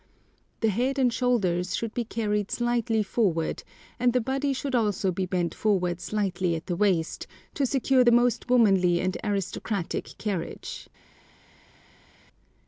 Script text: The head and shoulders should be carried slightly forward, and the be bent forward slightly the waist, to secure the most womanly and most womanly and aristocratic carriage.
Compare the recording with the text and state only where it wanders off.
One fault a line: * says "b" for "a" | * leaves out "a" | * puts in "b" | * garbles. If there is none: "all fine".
* puts in "body should also"
* puts in "at"
* leaves out "most womanly and"